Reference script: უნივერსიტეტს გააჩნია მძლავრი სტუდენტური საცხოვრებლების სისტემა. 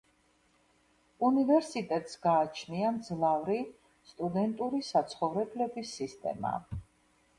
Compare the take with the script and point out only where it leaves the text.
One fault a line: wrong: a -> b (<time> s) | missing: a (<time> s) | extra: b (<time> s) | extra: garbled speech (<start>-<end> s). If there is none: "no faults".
no faults